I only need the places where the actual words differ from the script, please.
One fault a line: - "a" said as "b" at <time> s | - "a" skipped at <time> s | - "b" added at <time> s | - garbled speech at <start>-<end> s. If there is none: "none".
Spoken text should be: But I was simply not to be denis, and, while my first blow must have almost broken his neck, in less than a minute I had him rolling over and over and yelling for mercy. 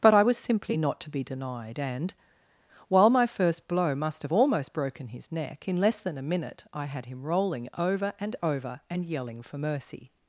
- "denis" said as "denied" at 1.2 s